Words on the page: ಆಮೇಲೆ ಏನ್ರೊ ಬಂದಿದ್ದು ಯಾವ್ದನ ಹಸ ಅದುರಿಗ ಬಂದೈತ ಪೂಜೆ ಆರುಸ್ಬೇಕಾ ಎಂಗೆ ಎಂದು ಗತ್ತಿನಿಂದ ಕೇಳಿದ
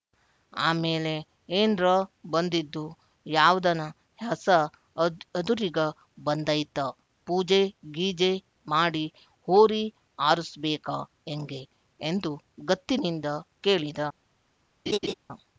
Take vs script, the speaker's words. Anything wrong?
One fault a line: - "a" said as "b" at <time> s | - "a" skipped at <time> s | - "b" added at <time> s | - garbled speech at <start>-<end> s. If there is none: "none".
- "ಗೀಜೆ ಮಾಡಿ ಹೋರಿ" added at 8.0 s